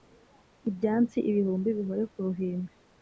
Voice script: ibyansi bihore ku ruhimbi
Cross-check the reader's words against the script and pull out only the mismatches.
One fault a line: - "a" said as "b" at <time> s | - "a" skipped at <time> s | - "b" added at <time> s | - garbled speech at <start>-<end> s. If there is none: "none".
- "ibihumbi" added at 1.3 s